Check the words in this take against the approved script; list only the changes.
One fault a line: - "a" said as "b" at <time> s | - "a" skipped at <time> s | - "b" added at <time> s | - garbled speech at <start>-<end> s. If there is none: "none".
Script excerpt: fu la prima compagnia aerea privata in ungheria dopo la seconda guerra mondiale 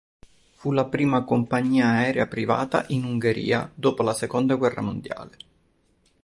none